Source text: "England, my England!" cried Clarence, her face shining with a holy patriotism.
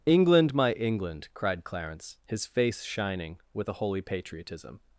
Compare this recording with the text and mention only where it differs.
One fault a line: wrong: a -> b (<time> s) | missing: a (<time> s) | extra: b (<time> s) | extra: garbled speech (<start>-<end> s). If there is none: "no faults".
wrong: her -> his (2.2 s)